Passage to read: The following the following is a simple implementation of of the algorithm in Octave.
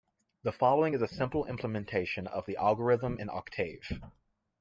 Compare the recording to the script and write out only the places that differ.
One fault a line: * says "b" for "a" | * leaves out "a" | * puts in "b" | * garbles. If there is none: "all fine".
* leaves out "the following"
* leaves out "of"